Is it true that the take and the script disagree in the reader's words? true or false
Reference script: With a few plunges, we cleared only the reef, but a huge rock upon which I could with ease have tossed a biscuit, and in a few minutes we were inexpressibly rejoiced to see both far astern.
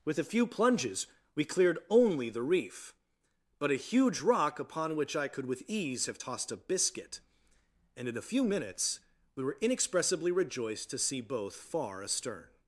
false